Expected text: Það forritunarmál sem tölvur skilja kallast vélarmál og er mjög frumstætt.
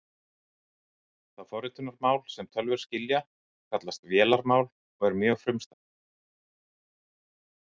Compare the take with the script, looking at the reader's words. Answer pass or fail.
pass